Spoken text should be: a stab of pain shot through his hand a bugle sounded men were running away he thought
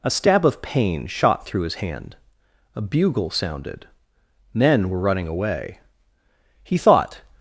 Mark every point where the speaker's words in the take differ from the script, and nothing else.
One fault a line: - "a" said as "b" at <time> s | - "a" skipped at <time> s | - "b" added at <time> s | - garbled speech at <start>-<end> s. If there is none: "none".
none